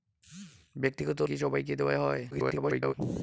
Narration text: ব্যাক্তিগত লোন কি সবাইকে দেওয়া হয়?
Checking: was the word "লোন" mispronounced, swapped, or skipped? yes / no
yes